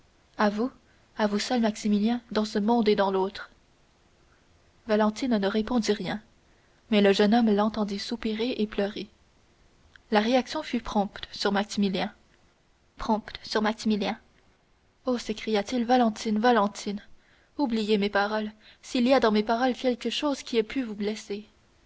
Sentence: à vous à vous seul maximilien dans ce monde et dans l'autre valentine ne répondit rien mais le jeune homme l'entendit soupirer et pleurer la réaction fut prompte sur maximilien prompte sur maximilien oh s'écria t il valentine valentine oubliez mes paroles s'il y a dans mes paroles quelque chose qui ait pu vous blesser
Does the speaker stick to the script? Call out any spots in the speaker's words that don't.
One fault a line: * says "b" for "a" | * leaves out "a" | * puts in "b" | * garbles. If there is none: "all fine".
all fine